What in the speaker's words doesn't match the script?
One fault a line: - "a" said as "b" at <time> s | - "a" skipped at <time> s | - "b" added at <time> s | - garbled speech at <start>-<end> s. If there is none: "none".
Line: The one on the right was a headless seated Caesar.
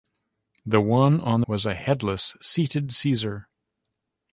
- "the right" skipped at 1.4 s